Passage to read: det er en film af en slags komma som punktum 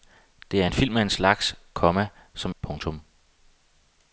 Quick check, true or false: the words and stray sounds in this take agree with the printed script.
true